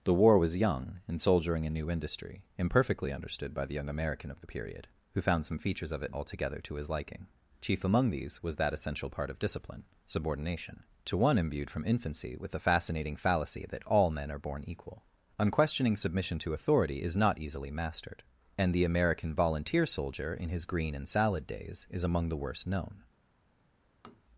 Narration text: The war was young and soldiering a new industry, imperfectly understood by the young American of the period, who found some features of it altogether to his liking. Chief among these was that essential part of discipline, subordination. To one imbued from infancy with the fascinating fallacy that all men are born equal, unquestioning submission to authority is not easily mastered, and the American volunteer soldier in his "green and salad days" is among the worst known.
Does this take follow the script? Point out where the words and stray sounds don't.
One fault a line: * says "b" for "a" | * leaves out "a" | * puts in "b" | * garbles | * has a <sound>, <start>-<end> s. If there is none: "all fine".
* has a tap, 24.0-24.2 s